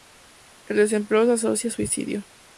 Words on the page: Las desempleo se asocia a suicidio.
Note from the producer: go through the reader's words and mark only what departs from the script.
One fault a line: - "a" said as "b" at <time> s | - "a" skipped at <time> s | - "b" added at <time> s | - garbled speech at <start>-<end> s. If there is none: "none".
- "Las" said as "El" at 0.7 s